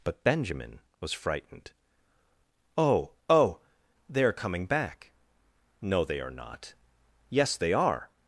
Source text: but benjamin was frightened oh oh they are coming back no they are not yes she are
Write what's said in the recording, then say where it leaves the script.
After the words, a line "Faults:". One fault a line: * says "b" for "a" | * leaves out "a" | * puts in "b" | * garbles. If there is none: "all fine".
but benjamin was frightened oh oh they are coming back no they are not yes they are
Faults:
* says "they" for "she"